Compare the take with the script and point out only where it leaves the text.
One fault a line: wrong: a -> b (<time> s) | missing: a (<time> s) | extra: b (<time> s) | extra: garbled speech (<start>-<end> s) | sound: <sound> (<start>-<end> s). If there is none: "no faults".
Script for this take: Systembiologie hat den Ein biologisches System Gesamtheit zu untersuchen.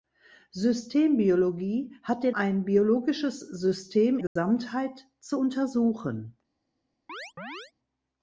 sound: dropout (4.3-4.4 s)
sound: chirp (7.1-7.7 s)